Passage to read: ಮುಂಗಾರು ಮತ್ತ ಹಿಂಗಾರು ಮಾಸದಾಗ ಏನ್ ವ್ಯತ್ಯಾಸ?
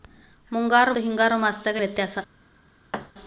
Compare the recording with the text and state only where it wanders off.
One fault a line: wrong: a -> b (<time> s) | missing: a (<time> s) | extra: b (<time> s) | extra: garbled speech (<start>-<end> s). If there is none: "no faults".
missing: ಮತ್ತ (0.9 s)
missing: ಏನ್ (1.8 s)